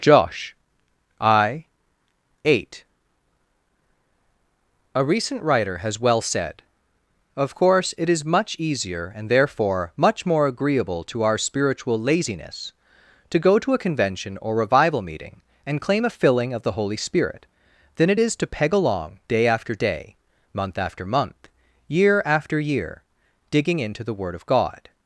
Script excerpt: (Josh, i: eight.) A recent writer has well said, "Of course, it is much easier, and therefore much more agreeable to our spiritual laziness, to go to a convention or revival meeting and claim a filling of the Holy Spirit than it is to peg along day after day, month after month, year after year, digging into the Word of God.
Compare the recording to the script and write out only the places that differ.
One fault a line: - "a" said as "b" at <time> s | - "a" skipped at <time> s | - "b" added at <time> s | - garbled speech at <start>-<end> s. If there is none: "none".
none